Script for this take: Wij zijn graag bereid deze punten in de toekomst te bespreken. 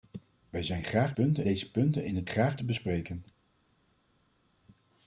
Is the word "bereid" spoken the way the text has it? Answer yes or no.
no